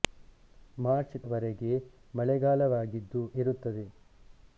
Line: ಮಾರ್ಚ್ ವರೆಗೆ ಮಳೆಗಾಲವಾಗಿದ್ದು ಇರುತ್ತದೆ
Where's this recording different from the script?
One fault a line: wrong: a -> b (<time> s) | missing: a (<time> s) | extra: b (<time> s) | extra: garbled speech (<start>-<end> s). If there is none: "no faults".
no faults